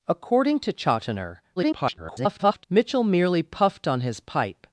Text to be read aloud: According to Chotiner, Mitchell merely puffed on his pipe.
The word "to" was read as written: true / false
true